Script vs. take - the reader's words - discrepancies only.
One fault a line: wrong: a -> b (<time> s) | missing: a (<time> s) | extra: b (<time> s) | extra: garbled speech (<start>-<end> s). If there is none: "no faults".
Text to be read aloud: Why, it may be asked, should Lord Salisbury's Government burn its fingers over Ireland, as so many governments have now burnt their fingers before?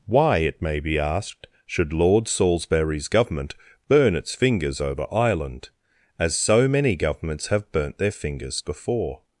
missing: now (7.7 s)